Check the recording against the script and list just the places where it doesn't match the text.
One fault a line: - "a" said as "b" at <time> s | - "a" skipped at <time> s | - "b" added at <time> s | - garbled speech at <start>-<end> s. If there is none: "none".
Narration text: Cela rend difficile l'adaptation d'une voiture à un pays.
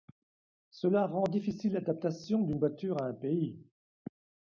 none